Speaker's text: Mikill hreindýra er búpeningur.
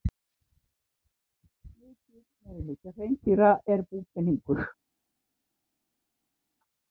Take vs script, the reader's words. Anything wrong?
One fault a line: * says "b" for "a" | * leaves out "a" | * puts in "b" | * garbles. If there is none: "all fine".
* puts in "meirihluti"